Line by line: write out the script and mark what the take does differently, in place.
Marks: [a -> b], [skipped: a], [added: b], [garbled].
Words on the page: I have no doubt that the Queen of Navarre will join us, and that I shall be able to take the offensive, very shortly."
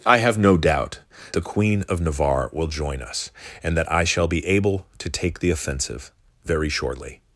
I have no doubt [skipped: that] the Queen of Navarre will join us, and that I shall be able to take the offensive, very shortly."